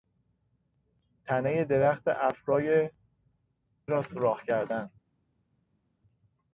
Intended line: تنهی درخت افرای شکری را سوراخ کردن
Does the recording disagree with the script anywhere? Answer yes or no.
yes